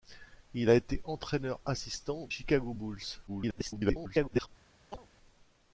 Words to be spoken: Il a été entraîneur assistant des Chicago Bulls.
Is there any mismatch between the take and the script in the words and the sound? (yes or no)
yes